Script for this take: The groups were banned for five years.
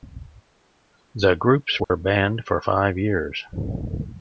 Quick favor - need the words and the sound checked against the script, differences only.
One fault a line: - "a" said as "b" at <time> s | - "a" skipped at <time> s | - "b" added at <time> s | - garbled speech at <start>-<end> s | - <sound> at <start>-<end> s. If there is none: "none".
- dropout at 1.8-1.9 s